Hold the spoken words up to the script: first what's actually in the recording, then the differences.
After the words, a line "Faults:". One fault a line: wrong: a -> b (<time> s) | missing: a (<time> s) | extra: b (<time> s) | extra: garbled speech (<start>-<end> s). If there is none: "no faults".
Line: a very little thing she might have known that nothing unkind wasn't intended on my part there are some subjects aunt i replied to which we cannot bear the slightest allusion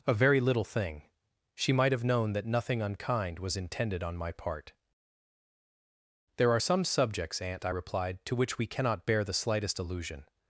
a very little thing she might have known that nothing unkind was intended on my part there are some subjects aunt i replied to which we cannot bear the slightest allusion
Faults:
wrong: wasn't -> was (3.4 s)